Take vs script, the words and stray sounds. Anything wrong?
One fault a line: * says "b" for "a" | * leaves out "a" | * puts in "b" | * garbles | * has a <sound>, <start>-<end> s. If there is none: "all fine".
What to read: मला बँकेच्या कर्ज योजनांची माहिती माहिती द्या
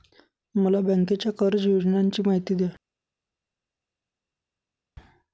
* leaves out "माहिती"